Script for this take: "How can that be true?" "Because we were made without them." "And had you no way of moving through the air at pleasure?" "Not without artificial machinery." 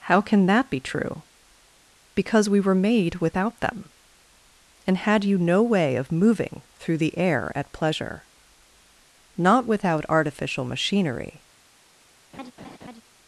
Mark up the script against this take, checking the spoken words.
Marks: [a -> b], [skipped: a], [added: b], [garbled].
"How can that be true?" "Because we were made without them." "And had you no way of moving through the air at pleasure?" "Not without artificial machinery."